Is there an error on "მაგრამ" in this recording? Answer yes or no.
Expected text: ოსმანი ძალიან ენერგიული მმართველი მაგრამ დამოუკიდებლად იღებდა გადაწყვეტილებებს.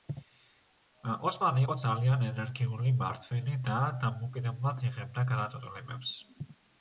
yes